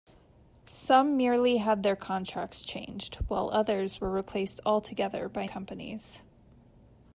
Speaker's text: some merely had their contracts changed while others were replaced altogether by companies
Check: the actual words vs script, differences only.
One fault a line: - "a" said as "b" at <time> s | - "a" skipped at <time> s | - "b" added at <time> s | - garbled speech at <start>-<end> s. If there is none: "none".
none